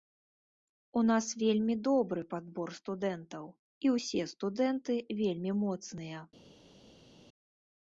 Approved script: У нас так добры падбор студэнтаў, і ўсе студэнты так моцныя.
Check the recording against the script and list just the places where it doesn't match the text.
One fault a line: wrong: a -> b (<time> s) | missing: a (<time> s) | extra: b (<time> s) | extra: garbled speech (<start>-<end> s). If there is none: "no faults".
wrong: так -> вельмі (1.4 s)
wrong: так -> вельмі (5.2 s)